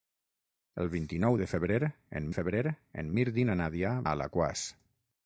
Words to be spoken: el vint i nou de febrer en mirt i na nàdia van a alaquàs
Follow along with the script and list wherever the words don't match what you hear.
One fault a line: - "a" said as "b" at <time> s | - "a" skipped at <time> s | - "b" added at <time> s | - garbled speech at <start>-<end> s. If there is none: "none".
- "febrer en" added at 2.4 s
- "van" skipped at 3.9 s